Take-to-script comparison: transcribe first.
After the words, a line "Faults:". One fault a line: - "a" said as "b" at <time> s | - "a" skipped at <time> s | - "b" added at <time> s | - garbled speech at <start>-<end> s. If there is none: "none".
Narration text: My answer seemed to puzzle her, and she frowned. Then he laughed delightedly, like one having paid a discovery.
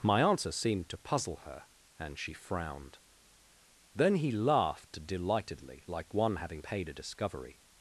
My answer seemed to puzzle her, and she frowned. Then he laughed delightedly, like one having paid a discovery.
Faults:
none